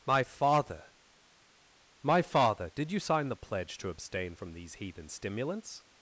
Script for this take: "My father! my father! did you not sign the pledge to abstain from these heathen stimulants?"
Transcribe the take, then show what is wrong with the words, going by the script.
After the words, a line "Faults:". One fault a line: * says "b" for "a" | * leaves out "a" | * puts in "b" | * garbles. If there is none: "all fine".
"My father! my father! did you sign the pledge to abstain from these heathen stimulants?"
Faults:
* leaves out "not"